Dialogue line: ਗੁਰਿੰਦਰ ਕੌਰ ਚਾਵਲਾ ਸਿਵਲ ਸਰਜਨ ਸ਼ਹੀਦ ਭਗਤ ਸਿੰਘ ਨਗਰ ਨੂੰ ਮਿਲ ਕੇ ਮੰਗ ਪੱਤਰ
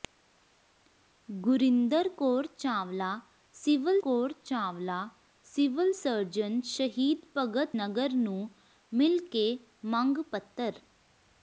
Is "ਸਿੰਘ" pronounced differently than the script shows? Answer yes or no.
yes